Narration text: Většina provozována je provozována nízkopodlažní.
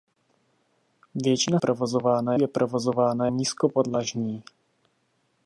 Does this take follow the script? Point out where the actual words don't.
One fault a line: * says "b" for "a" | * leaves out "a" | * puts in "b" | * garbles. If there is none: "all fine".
all fine